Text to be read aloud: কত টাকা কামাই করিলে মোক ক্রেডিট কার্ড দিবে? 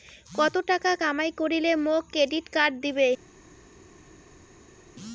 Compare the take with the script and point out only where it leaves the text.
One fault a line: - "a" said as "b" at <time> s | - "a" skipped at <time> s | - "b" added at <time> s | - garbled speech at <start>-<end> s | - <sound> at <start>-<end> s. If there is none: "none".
none